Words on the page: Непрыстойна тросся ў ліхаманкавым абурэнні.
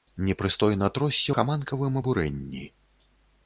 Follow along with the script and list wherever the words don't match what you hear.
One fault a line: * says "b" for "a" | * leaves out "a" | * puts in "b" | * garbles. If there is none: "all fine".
* leaves out "ў"